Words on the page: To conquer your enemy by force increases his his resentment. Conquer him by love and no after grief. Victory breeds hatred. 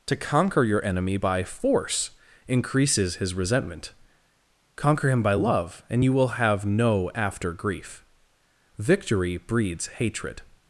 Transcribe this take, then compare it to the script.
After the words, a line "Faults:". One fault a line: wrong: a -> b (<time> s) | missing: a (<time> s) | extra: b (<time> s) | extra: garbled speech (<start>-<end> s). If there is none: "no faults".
To conquer your enemy by force increases his resentment. Conquer him by love and you will have no after grief. Victory breeds hatred.
Faults:
missing: his (3.3 s)
extra: you will have (6.0 s)